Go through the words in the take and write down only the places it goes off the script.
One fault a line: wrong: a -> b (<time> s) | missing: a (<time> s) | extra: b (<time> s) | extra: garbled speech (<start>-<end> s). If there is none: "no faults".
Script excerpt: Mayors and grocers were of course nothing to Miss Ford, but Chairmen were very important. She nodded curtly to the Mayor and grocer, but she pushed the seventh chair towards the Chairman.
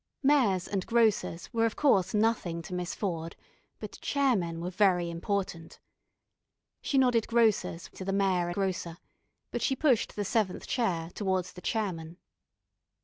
wrong: curtly -> grocers (7.3 s)
missing: and (8.5 s)